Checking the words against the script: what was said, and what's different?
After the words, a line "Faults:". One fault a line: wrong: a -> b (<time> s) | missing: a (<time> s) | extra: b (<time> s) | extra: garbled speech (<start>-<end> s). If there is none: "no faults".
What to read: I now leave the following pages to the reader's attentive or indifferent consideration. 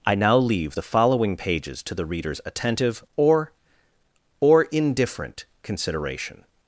I now leave the following pages to the reader's attentive or or indifferent consideration.
Faults:
extra: or (4.4 s)